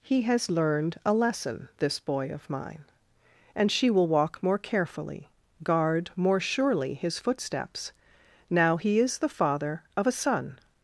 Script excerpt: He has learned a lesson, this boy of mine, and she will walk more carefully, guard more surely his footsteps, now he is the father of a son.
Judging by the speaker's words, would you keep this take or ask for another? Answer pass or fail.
pass